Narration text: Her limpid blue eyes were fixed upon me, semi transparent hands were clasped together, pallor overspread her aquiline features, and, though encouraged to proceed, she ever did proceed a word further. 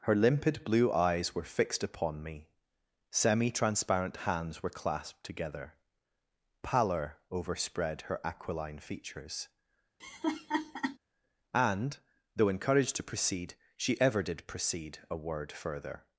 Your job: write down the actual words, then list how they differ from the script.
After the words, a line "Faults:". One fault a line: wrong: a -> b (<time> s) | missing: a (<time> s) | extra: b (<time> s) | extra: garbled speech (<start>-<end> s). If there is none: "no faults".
Her limpid blue eyes were fixed upon me, semi transparent hands were clasped together, pallor overspread her aquiline features, and, though encouraged to proceed, she ever did proceed a word further.
Faults:
no faults